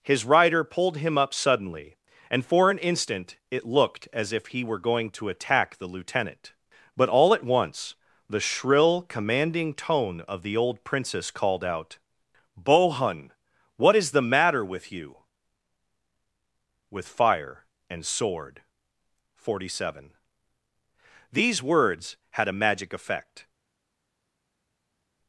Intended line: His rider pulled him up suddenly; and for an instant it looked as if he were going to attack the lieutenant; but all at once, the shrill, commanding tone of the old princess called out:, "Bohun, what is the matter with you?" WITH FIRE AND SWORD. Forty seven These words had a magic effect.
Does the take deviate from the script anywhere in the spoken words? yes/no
no